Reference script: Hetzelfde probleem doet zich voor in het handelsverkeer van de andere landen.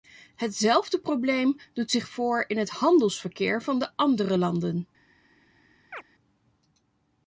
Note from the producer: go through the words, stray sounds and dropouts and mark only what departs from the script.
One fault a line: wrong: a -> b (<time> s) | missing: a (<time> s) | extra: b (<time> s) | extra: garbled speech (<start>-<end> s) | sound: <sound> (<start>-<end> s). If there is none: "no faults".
sound: chirp (5.9-6.0 s)